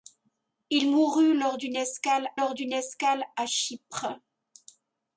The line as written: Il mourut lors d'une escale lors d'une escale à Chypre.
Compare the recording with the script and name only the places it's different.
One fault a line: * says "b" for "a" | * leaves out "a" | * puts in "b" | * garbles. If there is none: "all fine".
all fine